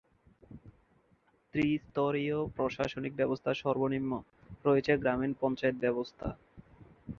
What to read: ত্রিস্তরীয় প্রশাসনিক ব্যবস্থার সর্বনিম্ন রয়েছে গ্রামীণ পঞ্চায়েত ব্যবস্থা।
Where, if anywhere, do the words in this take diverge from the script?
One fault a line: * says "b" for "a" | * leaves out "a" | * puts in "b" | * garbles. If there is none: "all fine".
all fine